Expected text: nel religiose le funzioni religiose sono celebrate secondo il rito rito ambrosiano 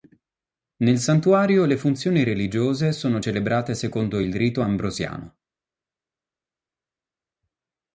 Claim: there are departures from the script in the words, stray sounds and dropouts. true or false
true